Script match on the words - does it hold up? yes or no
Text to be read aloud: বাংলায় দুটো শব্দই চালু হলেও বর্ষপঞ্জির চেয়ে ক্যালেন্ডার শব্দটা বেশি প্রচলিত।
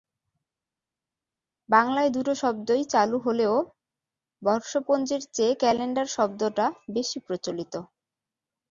yes